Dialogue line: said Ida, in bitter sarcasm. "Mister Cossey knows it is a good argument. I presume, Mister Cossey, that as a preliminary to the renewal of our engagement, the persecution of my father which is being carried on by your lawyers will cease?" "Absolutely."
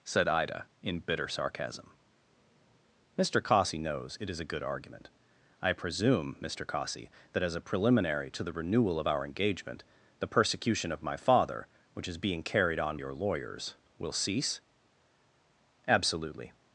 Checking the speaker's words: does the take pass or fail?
fail